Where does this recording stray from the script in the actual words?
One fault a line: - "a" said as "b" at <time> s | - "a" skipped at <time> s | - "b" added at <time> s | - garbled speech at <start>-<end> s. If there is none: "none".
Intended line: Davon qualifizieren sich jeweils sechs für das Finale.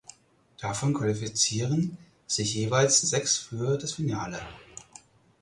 none